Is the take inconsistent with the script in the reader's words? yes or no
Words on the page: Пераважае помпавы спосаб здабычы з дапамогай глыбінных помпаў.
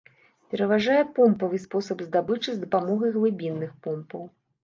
no